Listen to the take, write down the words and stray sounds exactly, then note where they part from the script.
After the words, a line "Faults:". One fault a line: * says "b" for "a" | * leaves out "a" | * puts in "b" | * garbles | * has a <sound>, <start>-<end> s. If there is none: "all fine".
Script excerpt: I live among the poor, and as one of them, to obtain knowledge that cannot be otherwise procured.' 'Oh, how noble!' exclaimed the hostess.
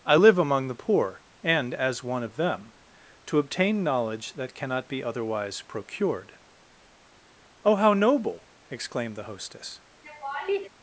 I live among the poor, and as one of them, to obtain knowledge that cannot be otherwise procured.' 'Oh, how noble!' exclaimed the hostess.
Faults:
* has a laugh, 10.0-10.7 s